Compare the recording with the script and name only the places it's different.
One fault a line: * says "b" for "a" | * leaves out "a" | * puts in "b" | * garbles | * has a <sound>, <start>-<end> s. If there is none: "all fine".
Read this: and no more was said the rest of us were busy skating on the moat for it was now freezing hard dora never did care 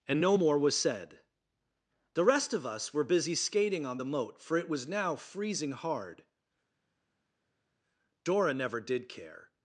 all fine